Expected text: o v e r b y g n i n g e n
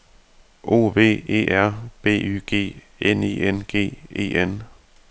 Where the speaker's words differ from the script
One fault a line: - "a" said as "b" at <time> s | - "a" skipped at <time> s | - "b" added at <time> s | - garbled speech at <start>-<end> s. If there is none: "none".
none